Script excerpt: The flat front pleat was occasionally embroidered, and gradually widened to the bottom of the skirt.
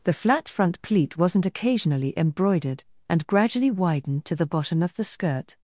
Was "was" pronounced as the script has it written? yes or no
no